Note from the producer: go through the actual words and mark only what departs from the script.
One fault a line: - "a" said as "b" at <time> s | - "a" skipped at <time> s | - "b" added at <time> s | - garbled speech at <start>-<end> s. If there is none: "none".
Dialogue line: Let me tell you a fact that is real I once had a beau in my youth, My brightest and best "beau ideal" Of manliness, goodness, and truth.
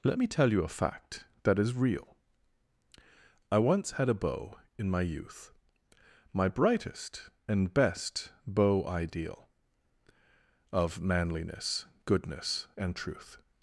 none